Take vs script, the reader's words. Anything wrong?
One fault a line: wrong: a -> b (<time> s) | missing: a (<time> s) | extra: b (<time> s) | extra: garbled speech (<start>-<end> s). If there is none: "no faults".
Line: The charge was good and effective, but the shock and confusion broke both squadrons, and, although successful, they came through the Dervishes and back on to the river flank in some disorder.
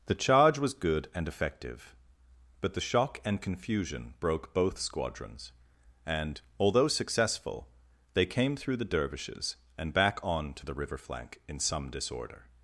no faults